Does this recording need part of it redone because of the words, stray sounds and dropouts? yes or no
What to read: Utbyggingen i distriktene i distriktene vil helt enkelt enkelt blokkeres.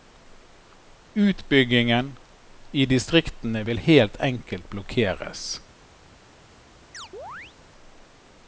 yes